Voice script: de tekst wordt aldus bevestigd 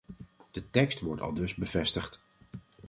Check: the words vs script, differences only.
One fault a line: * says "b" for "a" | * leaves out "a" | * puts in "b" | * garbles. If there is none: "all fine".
all fine